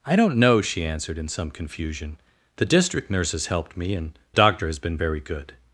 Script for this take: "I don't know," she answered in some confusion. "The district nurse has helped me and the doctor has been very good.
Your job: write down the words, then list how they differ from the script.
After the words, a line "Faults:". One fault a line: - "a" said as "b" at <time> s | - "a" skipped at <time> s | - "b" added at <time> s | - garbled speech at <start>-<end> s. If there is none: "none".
"I don't know," she answered in some confusion. "The district nurse has helped me and doctor has been very good.
Faults:
- "the" skipped at 4.2 s